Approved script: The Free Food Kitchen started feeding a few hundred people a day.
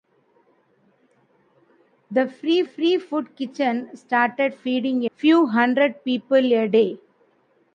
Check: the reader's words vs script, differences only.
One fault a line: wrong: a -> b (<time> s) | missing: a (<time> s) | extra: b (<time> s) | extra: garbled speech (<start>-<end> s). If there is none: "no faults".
extra: Free (2.6 s)
missing: a (5.1 s)